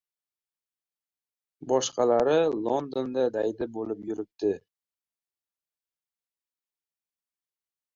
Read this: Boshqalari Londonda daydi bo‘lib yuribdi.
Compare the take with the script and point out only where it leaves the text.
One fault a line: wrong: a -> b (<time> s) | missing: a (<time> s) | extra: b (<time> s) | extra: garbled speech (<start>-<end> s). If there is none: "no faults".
no faults